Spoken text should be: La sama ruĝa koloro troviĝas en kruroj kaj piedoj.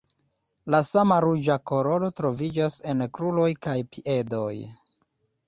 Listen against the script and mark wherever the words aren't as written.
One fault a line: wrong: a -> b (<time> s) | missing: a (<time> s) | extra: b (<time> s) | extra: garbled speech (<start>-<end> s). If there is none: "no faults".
no faults